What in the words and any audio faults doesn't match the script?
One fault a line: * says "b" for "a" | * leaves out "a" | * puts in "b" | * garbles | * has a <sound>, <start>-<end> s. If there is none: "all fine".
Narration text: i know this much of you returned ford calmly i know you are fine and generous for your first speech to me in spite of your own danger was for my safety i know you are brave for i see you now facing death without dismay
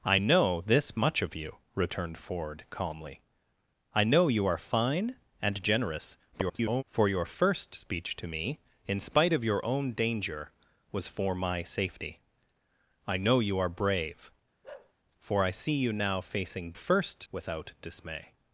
* garbles
* has a bark, 14.6-14.9 s
* says "first" for "death"